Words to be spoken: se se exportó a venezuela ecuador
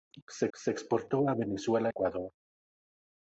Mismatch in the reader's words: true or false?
false